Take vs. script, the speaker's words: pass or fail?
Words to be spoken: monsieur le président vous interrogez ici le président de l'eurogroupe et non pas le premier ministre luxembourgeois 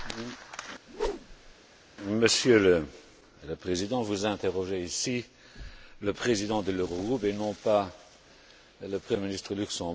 pass